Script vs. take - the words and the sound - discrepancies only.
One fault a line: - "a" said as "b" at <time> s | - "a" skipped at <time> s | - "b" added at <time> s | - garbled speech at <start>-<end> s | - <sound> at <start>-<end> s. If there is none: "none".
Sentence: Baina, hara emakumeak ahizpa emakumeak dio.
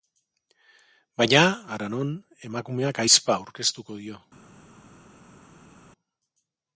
- "non" added at 1.9 s
- "emakumeak" said as "aurkeztuko" at 3.4 s